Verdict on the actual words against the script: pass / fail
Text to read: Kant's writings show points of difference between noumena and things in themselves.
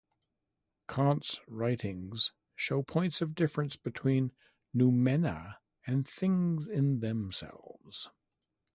pass